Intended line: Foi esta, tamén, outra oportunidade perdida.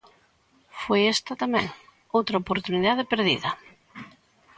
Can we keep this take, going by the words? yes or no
yes